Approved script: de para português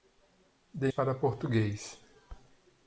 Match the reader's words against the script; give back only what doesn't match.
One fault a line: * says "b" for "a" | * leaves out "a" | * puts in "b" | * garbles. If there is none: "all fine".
all fine